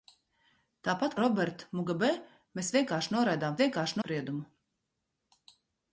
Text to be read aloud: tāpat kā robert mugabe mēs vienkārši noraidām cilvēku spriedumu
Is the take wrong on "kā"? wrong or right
wrong